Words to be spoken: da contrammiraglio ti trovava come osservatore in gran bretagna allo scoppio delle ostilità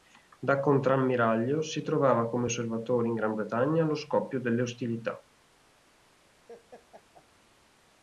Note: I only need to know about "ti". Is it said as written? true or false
false